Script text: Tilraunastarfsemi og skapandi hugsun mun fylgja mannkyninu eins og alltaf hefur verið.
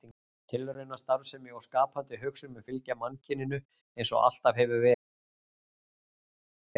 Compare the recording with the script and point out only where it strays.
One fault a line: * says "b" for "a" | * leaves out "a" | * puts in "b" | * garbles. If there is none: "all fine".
all fine